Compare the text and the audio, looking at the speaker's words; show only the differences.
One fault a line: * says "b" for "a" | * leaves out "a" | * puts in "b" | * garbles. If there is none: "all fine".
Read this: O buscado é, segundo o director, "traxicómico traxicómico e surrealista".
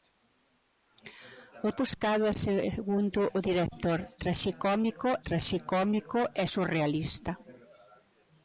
all fine